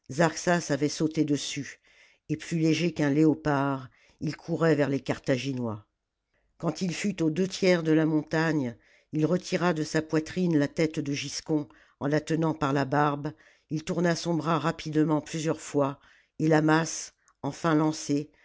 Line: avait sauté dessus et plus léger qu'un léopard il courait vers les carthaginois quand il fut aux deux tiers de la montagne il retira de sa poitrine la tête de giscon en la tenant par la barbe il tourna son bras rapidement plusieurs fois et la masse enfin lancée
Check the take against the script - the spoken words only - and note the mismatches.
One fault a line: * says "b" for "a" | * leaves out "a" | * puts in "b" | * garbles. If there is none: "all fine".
all fine